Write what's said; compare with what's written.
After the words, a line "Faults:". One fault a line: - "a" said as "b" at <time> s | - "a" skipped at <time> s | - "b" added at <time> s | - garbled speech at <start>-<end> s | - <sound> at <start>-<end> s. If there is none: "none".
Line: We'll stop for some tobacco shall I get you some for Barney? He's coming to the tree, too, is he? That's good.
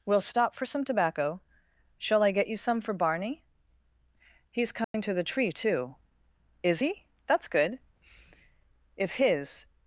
We'll stop for some tobacco shall I get you some for Barney? He's coming to the tree, too, is he? That's good. If his
Faults:
- dropout at 4.8-4.9 s
- "If his" added at 9.0 s